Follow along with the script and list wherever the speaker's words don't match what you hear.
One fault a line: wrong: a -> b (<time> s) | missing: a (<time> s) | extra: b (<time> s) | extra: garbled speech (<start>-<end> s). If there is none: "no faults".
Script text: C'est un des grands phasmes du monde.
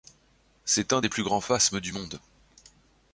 extra: plus (1.1 s)